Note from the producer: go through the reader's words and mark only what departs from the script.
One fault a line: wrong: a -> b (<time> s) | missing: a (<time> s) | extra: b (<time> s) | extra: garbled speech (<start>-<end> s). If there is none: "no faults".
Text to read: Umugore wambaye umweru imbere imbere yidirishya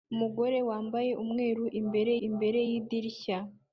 no faults